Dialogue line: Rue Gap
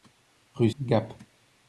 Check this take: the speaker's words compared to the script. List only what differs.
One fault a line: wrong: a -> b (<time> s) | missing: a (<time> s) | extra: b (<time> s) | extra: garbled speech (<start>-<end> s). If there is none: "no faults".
no faults